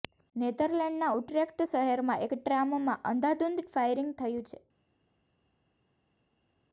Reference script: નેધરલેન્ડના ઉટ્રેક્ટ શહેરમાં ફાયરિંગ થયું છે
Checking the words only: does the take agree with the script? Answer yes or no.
no